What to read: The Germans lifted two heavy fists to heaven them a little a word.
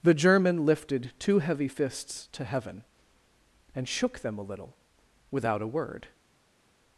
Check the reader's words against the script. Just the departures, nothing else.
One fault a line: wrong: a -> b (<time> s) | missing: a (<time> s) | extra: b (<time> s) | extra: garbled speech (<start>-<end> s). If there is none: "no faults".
wrong: Germans -> German (0.1 s)
extra: and shook (3.7 s)
extra: without (5.3 s)